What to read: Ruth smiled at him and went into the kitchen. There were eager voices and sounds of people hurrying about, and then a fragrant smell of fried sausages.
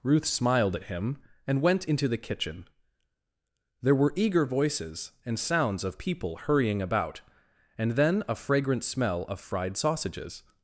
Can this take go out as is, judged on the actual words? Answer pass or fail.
pass